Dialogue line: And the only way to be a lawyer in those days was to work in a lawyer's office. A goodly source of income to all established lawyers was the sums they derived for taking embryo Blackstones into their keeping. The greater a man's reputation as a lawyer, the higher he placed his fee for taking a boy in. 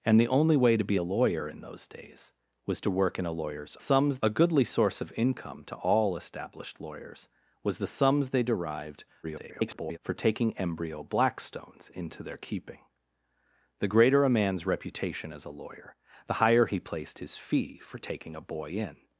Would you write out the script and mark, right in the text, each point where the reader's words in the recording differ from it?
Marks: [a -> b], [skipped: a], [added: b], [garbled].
And the only way to be a lawyer in those days was to work in a lawyer's [office. -> sums] A goodly source of income to all established lawyers was the sums they derived [garbled] for taking embryo Blackstones into their keeping. The greater a man's reputation as a lawyer, the higher he placed his fee for taking a boy in.